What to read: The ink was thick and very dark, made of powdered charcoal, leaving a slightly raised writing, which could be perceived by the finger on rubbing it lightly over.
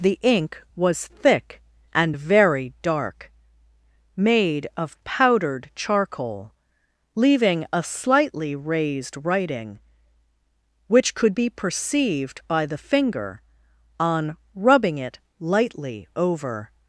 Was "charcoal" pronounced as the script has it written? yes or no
yes